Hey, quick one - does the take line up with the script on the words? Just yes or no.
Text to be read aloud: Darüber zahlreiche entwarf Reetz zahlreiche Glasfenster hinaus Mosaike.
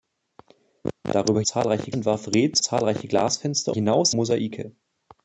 yes